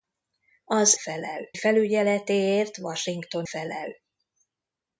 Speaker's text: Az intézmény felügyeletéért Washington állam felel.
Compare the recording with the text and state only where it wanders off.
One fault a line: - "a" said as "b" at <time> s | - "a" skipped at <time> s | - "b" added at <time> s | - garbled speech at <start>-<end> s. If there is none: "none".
- "intézmény" said as "felel" at 1.0 s
- "állam" skipped at 3.5 s